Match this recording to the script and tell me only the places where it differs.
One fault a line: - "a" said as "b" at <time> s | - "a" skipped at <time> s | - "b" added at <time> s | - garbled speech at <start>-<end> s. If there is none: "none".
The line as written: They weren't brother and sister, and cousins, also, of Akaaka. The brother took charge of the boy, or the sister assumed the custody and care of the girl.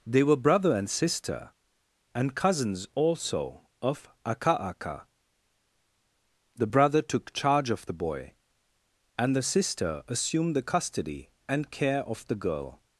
- "weren't" said as "were" at 0.2 s
- "or" said as "and" at 9.2 s